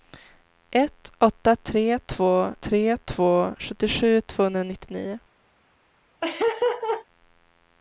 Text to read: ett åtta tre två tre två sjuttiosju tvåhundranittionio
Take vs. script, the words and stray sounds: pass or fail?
fail